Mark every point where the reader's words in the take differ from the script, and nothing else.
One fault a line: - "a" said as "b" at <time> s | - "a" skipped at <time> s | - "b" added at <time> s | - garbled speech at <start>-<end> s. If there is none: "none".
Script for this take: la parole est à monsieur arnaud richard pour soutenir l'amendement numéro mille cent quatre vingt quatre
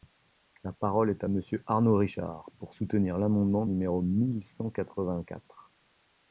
none